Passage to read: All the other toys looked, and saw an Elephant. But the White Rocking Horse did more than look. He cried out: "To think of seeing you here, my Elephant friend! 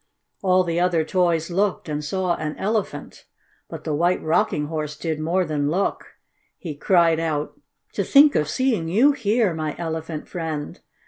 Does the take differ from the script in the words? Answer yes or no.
no